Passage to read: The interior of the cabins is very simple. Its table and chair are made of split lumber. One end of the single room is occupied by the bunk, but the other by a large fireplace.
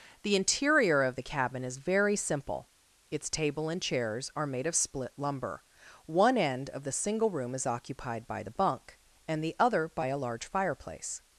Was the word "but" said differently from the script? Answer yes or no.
yes